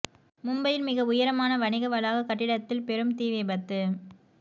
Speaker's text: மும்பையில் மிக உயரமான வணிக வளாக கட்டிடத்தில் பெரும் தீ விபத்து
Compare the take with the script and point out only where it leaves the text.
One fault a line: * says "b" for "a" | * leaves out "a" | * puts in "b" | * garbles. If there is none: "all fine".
all fine